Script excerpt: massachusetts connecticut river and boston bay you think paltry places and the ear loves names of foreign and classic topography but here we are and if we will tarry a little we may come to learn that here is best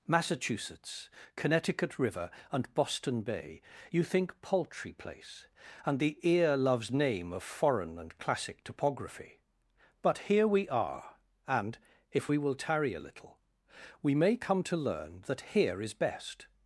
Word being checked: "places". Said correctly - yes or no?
no